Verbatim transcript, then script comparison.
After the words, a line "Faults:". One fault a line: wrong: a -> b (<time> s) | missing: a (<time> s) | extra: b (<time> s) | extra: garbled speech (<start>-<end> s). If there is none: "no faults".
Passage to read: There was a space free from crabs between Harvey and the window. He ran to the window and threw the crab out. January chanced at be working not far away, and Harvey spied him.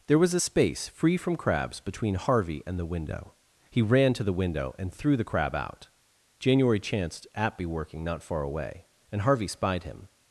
There was a space free from crabs between Harvey and the window. He ran to the window and threw the crab out. January chanced at be working not far away, and Harvey spied him.
Faults:
no faults